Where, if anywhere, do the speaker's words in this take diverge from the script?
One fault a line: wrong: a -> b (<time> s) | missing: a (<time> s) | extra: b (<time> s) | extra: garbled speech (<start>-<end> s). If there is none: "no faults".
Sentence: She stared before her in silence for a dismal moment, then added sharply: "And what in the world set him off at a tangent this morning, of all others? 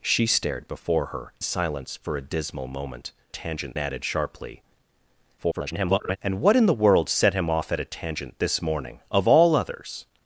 missing: in (1.4 s)
wrong: then -> tangent (3.3 s)
extra: garbled speech (5.4-6.2 s)